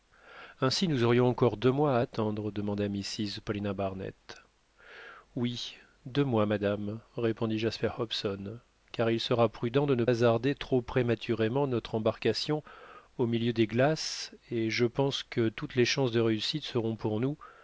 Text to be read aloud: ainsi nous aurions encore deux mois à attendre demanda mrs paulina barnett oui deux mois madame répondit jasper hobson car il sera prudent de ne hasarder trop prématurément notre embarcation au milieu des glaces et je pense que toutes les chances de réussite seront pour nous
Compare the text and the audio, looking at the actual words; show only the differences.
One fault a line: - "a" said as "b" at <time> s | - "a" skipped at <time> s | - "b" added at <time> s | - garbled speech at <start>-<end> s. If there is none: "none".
none